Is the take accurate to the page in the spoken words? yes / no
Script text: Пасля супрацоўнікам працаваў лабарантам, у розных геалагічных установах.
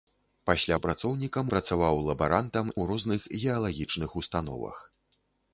yes